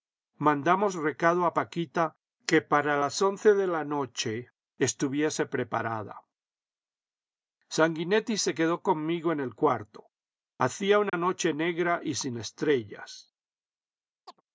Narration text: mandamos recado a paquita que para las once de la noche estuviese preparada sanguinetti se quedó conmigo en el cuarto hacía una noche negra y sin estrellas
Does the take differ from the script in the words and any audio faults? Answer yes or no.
yes